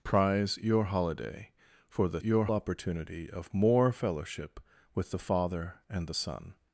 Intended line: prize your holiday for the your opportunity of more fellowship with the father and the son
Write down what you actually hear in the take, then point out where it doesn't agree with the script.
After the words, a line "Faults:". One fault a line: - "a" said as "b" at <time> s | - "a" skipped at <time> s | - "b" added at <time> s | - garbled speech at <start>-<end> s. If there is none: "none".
prize your holiday for the your opportunity of more fellowship with the father and the son
Faults:
none